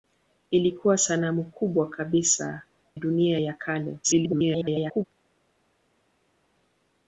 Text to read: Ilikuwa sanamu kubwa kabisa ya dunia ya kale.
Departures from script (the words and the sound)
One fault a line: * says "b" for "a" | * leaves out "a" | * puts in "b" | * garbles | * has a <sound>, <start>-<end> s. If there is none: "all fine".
* leaves out "ya"
* garbles